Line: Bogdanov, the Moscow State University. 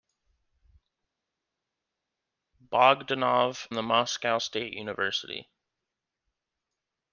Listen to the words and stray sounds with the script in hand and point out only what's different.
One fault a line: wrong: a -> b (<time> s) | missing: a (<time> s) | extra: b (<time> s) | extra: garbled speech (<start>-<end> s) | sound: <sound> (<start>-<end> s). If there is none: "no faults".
no faults